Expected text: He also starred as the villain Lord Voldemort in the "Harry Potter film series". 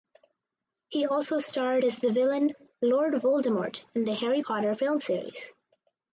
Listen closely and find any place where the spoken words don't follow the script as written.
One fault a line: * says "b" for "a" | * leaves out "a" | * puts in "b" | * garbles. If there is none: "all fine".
all fine